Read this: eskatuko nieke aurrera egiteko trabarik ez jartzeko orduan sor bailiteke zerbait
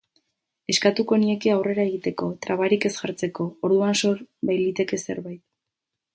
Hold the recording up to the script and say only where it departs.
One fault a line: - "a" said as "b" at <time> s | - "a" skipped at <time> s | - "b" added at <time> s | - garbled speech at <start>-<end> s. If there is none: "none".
none